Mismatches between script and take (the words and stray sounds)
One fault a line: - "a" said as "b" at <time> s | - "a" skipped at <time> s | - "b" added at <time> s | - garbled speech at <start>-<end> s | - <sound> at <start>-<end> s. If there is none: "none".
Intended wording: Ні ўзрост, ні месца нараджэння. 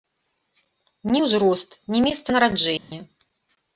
- dropout at 2.8-2.9 s